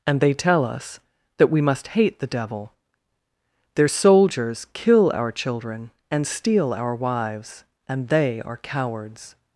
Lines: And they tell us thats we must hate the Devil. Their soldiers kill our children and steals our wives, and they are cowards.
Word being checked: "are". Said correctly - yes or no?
yes